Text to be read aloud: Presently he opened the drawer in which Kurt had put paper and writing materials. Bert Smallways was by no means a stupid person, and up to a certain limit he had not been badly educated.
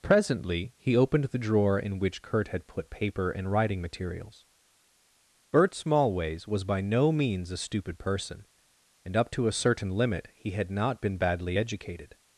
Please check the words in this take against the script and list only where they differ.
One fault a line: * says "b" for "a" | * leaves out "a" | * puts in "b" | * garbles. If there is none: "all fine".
all fine